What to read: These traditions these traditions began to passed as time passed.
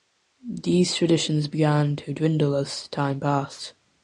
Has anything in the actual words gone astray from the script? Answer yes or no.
yes